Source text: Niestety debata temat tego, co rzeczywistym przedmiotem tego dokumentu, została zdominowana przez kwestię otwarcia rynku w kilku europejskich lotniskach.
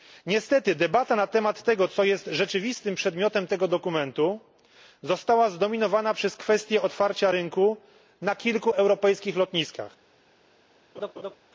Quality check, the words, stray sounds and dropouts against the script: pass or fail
fail